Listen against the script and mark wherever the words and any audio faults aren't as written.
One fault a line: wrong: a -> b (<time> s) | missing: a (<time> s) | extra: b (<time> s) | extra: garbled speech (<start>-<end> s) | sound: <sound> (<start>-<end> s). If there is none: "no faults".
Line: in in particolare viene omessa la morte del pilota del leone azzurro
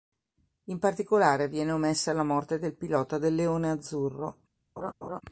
missing: in (0.8 s)
sound: laugh (4.8-5.2 s)